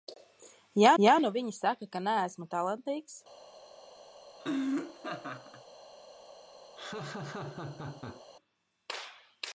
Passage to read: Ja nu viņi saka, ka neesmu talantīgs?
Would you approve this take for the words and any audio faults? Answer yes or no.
no